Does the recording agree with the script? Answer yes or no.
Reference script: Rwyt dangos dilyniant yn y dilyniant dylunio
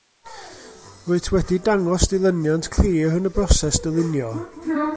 no